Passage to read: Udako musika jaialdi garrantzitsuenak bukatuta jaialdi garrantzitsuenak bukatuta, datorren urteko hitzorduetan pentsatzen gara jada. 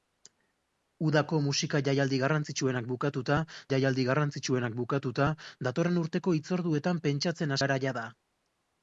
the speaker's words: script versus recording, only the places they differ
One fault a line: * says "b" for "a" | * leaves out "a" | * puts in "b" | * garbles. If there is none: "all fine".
all fine